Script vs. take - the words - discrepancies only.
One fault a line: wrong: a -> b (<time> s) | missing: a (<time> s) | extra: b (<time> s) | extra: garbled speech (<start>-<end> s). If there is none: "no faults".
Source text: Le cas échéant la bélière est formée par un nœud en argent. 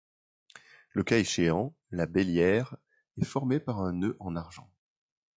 no faults